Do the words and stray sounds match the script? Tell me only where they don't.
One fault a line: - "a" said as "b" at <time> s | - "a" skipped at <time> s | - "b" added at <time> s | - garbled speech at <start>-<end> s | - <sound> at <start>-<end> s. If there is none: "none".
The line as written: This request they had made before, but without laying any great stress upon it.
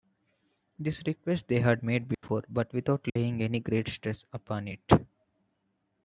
- dropout at 2.1-2.2 s
- dropout at 3.1-3.2 s